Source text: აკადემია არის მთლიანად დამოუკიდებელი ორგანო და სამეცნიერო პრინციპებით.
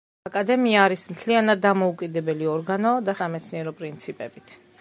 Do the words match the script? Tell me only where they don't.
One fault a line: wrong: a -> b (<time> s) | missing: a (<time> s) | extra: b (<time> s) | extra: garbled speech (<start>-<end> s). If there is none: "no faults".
no faults